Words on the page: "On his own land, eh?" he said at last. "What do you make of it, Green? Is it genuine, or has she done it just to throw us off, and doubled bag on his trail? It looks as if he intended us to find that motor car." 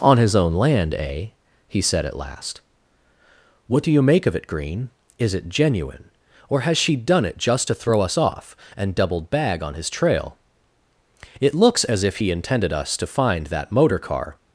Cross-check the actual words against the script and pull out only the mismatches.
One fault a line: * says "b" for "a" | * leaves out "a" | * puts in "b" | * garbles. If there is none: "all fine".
all fine